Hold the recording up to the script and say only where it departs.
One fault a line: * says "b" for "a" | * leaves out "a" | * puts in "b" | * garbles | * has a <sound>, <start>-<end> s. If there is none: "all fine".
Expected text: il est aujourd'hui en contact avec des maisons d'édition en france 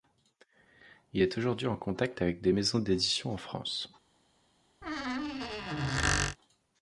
* has a squeak, 4.8-6.4 s